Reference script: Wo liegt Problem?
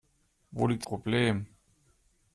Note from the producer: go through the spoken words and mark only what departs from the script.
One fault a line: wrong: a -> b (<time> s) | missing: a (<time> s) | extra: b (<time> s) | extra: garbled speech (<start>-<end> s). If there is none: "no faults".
no faults